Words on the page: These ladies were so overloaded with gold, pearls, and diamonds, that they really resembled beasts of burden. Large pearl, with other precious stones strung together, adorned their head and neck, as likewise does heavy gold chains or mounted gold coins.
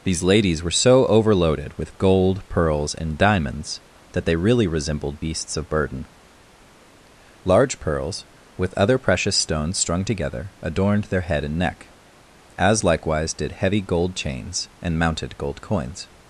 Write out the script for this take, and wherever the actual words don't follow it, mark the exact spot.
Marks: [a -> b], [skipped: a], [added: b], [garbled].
These ladies were so overloaded with gold, pearls, and diamonds, that they really resembled beasts of burden. Large [pearl, -> pearls] with other precious stones strung together, adorned their head and neck, as likewise [does -> did] heavy gold chains [or -> and] mounted gold coins.